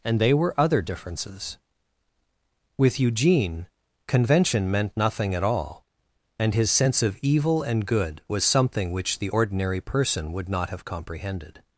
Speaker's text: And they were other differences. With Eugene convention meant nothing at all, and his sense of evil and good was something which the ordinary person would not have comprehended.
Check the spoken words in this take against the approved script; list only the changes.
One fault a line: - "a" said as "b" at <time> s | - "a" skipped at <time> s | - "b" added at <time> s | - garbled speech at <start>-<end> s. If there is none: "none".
none